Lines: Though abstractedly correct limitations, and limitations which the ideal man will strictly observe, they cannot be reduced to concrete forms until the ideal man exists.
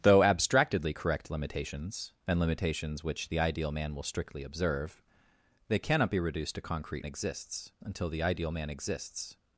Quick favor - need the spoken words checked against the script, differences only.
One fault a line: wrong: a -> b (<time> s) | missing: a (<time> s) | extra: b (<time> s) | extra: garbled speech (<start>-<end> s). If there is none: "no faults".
wrong: forms -> exists (7.0 s)